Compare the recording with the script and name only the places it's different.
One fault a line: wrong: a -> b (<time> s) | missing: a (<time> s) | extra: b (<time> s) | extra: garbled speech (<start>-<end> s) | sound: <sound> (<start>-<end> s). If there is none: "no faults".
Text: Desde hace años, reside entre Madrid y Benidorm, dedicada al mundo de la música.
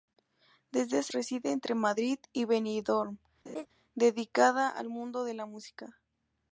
missing: años (1.1 s)
sound: laugh (3.5-3.7 s)